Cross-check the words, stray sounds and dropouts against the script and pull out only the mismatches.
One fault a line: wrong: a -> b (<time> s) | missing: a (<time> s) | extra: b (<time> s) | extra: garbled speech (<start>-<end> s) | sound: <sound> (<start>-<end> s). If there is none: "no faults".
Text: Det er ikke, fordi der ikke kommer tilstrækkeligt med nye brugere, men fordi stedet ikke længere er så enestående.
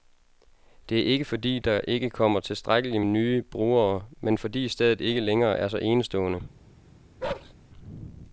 missing: med (3.0 s)
sound: bark (7.2-7.5 s)